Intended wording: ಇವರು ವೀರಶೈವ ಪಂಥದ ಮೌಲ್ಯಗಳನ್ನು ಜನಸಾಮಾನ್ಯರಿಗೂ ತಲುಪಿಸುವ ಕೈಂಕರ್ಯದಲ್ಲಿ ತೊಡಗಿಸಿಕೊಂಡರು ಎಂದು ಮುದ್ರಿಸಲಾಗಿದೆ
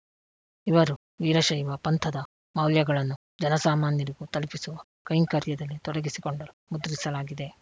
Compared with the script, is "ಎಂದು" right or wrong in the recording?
wrong